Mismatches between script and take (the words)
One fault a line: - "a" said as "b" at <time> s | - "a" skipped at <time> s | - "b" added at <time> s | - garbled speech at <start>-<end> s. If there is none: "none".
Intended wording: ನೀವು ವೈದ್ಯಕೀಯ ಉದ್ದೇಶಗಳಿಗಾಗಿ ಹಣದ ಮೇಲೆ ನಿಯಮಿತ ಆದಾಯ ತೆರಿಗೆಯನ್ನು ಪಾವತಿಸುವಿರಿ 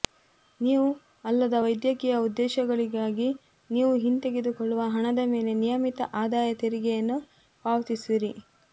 - "ಅಲ್ಲದ" added at 1.2 s
- "ನೀವು ಹಿಂತೆಗೆದುಕೊಳ್ಳುವ" added at 3.7 s